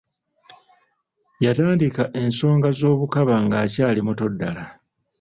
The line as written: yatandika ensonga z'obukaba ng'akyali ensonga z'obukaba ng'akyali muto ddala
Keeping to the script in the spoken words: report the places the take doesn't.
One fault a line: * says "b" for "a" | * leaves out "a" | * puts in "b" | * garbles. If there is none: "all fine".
* leaves out "ensonga z'obukaba ng'akyali"